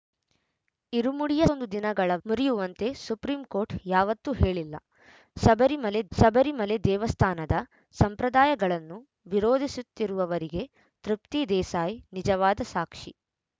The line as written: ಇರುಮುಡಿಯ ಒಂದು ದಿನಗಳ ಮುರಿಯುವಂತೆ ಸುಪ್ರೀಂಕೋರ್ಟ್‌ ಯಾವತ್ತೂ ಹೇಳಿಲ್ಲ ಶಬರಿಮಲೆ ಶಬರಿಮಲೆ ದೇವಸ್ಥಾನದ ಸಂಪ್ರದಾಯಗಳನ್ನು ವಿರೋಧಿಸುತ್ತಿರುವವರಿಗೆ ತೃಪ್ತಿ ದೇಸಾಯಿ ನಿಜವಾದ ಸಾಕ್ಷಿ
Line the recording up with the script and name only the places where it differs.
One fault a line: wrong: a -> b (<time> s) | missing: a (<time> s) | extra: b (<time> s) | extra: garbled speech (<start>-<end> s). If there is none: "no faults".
no faults